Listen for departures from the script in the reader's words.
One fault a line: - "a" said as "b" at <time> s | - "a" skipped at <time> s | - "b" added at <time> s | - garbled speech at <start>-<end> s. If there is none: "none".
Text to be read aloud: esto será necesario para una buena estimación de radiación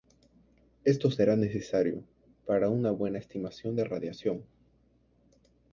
none